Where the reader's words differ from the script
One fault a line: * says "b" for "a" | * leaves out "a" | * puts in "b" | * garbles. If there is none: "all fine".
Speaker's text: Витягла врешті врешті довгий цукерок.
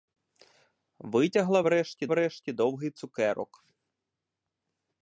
all fine